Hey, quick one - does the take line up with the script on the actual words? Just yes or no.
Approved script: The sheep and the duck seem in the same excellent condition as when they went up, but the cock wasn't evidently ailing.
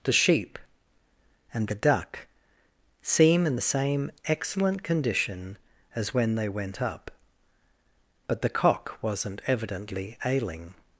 yes